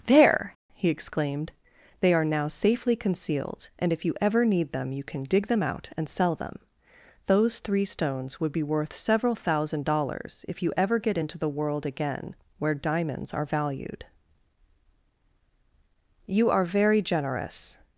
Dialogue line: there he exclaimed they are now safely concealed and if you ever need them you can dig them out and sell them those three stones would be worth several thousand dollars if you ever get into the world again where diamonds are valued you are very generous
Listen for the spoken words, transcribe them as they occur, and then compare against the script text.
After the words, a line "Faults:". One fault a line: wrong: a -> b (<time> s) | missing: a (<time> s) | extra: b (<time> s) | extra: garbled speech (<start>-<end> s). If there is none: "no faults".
there he exclaimed they are now safely concealed and if you ever need them you can dig them out and sell them those three stones would be worth several thousand dollars if you ever get into the world again where diamonds are valued you are very generous
Faults:
no faults